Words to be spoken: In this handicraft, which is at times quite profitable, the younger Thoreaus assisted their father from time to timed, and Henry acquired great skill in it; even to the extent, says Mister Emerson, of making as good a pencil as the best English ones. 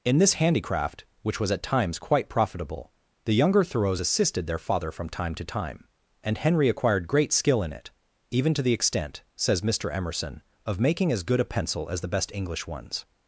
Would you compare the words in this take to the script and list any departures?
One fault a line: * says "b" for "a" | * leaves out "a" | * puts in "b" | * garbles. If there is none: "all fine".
* says "was" for "is"
* says "time" for "timed"